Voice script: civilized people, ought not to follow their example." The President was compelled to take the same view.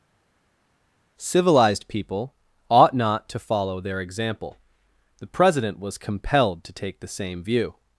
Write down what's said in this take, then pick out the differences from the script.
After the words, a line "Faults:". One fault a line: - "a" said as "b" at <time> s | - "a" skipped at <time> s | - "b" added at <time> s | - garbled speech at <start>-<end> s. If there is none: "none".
civilized people, ought not to follow their example." The President was compelled to take the same view.
Faults:
none